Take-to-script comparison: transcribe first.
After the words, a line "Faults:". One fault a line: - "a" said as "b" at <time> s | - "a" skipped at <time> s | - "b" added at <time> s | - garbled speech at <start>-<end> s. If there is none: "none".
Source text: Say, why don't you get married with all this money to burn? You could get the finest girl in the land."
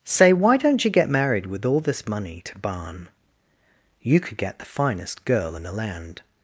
Say, why don't you get married with all this money to barn? You could get the finest girl in the land."
Faults:
- "burn" said as "barn" at 2.6 s